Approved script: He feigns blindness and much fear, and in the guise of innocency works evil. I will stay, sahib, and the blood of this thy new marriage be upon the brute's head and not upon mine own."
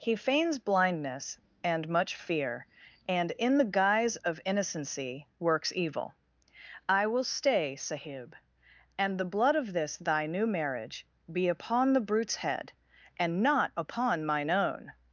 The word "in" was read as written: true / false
true